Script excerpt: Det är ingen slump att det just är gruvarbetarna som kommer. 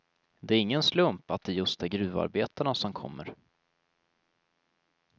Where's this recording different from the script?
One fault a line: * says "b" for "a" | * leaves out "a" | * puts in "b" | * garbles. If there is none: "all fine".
all fine